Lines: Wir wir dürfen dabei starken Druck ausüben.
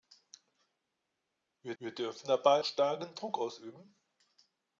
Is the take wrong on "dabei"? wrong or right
right